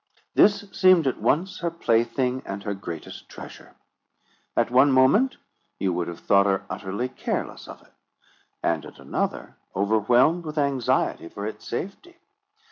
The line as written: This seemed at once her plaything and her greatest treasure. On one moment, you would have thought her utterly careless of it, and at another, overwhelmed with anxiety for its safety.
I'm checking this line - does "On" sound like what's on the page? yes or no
no